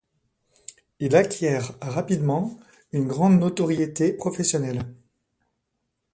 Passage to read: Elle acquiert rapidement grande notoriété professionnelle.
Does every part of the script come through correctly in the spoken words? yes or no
no